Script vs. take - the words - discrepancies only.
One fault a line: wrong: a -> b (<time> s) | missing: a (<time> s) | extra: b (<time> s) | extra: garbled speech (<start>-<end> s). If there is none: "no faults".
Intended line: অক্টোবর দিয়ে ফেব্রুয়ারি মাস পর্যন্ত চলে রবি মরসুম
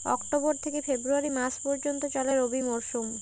wrong: দিয়ে -> থেকে (0.6 s)